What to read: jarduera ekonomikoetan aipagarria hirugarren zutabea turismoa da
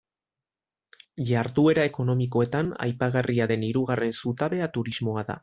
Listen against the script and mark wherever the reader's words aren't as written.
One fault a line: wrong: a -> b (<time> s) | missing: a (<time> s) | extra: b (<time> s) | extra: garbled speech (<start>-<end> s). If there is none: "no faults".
extra: den (3.5 s)